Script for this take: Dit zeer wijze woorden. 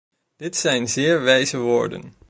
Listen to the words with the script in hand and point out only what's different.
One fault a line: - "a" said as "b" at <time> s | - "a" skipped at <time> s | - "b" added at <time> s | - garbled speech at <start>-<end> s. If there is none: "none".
- "zijn" added at 0.6 s